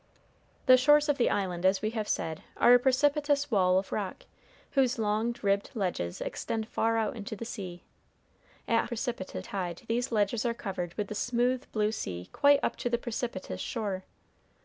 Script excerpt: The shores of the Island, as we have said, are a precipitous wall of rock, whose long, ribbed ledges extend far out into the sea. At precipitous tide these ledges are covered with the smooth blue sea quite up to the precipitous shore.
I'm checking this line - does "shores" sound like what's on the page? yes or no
yes